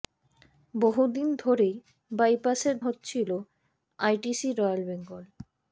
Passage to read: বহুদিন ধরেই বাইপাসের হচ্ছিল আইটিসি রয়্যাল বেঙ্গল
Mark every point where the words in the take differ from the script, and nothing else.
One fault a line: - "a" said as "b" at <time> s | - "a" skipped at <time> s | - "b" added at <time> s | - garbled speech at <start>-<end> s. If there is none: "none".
none